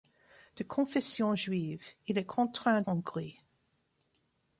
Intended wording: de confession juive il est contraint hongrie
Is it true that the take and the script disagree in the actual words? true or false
false